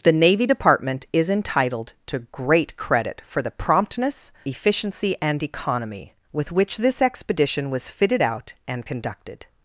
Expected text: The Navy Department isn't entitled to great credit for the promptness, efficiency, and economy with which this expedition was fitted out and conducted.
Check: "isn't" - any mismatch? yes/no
yes